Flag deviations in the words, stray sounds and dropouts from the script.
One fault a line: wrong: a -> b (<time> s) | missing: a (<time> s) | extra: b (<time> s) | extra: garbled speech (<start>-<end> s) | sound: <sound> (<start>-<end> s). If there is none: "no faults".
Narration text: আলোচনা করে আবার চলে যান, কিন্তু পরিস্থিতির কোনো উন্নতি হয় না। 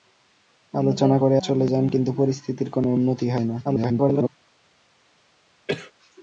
missing: আবার (1.4 s)
extra: garbled speech (3.6-4.3 s)
sound: cough (5.7-5.9 s)